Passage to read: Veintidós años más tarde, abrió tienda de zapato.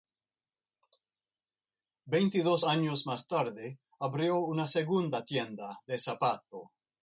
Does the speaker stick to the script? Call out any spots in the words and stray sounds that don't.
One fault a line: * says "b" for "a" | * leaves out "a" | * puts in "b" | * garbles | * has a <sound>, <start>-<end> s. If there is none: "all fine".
* puts in "una segunda"